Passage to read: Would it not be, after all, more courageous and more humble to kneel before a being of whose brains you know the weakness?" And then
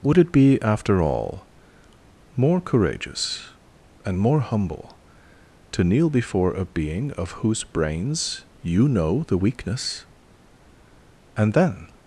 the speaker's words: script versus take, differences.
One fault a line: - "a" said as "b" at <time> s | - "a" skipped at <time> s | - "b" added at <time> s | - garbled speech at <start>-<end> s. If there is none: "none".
- "not" skipped at 0.3 s